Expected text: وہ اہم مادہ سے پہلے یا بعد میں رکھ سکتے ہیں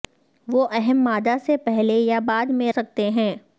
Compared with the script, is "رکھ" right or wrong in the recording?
wrong